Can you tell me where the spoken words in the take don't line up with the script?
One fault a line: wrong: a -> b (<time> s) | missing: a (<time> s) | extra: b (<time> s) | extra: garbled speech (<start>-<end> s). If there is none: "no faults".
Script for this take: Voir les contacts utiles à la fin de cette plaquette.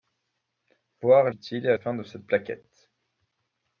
missing: les contacts (1.3 s)
missing: la (1.8 s)